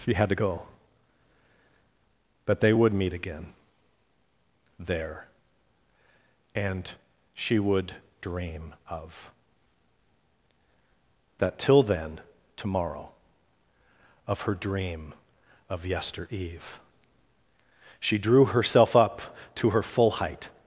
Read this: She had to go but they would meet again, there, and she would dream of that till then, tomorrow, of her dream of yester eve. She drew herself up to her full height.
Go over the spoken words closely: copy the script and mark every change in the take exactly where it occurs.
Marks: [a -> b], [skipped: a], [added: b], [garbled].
She had to go but they would meet again, there, and she would dream of that till then, tomorrow, of her dream of yester eve. She drew herself up to her full height.